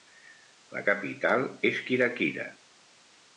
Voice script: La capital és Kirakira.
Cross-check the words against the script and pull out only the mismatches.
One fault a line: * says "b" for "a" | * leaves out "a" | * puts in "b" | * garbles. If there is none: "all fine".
all fine